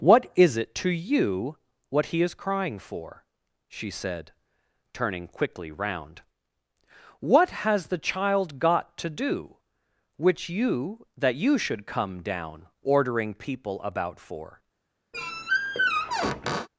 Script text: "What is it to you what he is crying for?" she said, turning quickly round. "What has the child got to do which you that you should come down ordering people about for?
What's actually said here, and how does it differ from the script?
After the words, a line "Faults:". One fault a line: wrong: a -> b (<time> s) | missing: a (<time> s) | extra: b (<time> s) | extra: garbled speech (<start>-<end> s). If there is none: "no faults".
"What is it to you what he is crying for?" she said, turning quickly round. "What has the child got to do which you that you should come down ordering people about for?
Faults:
no faults